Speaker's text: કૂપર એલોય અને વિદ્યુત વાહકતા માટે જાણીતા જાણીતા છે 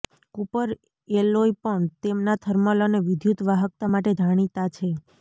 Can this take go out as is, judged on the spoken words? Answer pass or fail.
fail